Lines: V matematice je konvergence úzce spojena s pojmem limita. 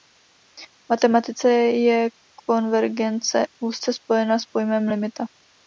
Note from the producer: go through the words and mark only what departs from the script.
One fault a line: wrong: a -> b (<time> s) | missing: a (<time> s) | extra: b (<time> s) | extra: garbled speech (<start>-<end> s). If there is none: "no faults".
no faults